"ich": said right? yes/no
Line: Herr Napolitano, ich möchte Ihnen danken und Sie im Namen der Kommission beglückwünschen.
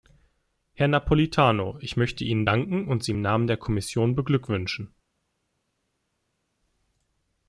yes